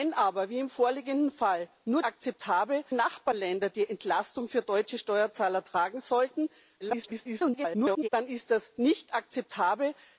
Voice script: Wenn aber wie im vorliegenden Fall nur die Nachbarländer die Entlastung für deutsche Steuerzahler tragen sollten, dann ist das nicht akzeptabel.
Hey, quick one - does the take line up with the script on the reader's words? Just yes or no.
no